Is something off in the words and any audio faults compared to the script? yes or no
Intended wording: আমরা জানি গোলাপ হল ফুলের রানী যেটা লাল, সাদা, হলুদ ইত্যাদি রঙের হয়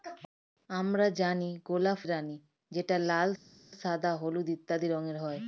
yes